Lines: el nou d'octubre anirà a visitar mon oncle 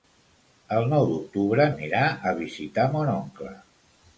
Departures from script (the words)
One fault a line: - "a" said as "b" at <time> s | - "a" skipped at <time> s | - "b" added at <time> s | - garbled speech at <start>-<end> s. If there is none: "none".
none